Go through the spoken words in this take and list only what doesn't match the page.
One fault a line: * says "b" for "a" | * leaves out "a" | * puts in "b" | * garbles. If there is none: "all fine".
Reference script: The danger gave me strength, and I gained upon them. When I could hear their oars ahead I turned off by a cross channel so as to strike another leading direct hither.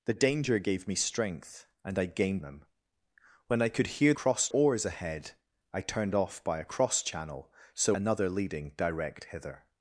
* leaves out "upon"
* says "cross" for "their"
* leaves out "as to strike"